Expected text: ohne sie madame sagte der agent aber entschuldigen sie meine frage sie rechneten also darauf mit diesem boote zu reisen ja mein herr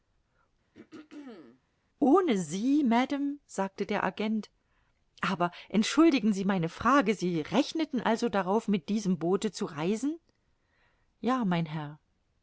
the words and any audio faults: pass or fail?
fail